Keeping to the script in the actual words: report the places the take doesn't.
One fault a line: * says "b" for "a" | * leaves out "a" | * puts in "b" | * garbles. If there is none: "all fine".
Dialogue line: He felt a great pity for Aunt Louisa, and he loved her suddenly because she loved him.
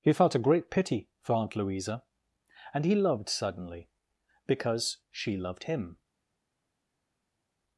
* leaves out "her"